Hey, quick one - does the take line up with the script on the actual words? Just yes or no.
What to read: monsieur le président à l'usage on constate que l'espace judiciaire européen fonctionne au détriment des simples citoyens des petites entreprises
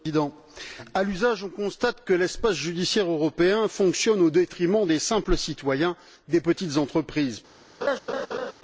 yes